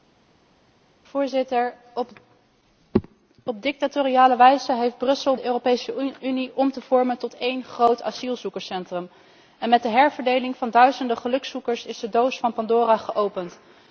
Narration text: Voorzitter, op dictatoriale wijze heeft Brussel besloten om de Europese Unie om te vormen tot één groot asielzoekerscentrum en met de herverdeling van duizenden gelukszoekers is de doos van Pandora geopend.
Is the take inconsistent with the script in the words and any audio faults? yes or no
yes